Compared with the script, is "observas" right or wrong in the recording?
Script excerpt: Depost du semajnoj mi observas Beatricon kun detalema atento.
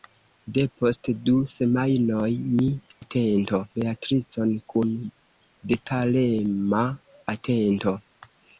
wrong